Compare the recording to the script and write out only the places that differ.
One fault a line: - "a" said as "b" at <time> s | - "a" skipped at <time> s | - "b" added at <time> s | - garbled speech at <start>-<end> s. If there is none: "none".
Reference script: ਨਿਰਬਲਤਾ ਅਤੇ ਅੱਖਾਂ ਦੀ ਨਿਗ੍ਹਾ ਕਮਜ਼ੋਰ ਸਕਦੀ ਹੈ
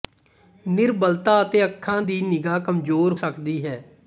none